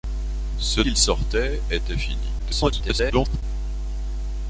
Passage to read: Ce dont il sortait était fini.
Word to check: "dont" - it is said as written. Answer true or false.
false